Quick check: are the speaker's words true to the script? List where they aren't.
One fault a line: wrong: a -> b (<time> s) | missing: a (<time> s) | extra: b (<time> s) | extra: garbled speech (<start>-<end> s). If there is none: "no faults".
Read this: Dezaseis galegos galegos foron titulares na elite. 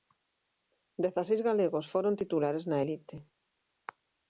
missing: galegos (1.9 s)